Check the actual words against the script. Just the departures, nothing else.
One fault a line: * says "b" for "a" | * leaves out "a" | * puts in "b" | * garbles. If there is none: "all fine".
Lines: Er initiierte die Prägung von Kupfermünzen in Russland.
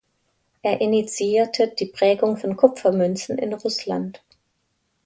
all fine